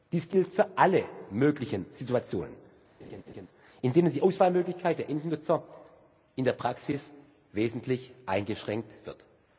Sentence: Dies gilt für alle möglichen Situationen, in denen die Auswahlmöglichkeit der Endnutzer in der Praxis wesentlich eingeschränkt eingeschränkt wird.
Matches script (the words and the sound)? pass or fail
fail